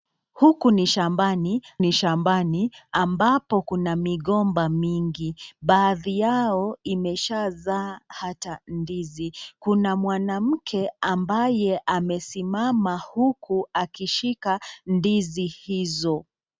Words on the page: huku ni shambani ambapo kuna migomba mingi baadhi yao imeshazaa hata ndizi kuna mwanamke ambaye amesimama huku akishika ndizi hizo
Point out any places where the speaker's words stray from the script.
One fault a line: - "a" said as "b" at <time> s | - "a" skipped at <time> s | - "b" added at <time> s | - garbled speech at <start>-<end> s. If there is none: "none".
- "ni shambani" added at 1.8 s